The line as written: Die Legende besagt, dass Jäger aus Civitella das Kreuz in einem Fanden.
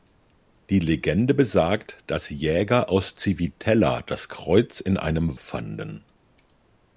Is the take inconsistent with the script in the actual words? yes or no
no